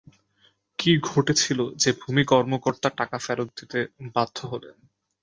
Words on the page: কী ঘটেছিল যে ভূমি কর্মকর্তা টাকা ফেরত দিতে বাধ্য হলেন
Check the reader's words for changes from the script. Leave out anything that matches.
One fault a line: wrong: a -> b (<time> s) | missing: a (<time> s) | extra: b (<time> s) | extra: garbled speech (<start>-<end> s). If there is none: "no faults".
no faults